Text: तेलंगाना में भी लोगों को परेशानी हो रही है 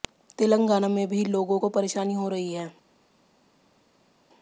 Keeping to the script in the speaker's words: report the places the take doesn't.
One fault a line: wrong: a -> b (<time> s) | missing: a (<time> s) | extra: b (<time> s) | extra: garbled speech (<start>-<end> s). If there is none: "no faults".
no faults